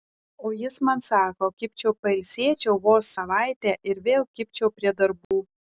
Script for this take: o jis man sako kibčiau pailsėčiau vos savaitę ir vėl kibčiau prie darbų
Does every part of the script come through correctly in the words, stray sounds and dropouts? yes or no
no